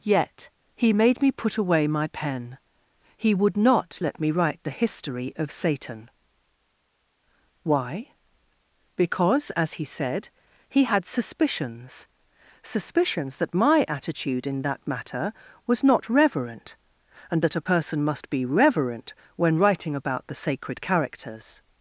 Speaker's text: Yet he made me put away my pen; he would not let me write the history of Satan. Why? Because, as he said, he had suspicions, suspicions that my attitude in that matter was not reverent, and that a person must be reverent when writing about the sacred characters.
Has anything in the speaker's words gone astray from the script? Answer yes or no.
no